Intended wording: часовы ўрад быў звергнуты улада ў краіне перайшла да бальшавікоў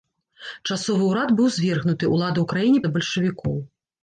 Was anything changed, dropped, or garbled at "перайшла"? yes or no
yes